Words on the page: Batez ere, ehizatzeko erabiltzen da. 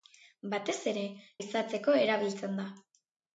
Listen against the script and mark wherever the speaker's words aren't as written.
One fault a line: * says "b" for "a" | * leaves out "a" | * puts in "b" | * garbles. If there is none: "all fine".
all fine